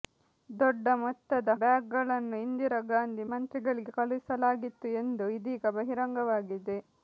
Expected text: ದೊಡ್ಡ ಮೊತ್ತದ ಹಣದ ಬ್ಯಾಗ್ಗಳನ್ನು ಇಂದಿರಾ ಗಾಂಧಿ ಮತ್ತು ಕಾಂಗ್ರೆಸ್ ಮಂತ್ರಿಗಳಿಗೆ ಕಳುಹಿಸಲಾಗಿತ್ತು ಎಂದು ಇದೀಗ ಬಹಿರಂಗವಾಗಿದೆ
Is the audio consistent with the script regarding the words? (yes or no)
no